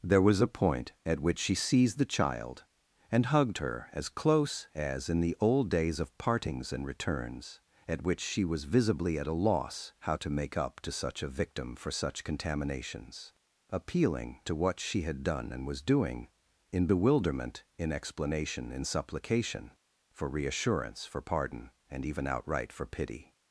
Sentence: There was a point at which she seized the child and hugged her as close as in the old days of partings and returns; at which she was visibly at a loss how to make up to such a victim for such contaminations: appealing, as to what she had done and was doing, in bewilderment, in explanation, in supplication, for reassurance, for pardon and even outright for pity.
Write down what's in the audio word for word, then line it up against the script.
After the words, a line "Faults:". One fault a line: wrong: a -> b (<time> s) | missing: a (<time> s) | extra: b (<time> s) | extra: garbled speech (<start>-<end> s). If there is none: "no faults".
There was a point at which she seized the child and hugged her as close as in the old days of partings and returns; at which she was visibly at a loss how to make up to such a victim for such contaminations: appealing, to what she had done and was doing, in bewilderment, in explanation, in supplication, for reassurance, for pardon and even outright for pity.
Faults:
missing: as (14.4 s)